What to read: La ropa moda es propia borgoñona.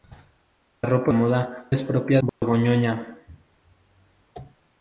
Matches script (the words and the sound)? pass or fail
fail